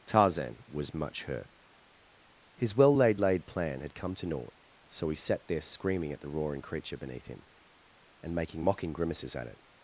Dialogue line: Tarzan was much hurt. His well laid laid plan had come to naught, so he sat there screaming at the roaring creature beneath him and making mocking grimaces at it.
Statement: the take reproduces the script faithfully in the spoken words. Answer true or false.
true